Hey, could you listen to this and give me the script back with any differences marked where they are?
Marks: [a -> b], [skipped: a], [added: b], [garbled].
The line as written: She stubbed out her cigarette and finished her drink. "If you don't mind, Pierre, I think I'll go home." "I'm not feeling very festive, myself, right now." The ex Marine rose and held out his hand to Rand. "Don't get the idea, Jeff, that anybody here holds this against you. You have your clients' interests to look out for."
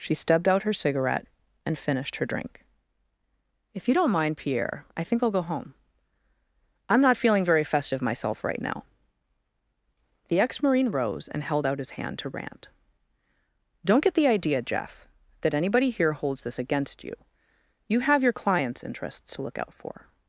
She stubbed out her cigarette and finished her drink. "If you don't mind, Pierre, I think I'll go home." "I'm not feeling very festive, myself, right now." The ex Marine rose and held out his hand to Rand. "Don't get the idea, Jeff, that anybody here holds this against you. You have your clients' interests to look out for."